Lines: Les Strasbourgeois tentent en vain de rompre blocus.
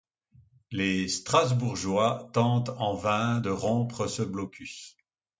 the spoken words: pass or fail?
fail